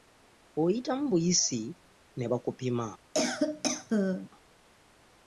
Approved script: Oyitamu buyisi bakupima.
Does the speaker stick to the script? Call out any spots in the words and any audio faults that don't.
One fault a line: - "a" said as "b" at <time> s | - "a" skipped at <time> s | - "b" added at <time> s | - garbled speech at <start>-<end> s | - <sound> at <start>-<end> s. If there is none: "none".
- "ne" added at 2.2 s
- cough at 3.1-4.3 s